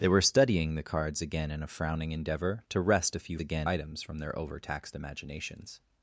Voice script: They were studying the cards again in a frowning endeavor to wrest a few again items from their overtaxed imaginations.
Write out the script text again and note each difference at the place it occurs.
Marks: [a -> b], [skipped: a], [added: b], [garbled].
They were studying the cards again in a frowning endeavor to wrest a few again items from their overtaxed imaginations.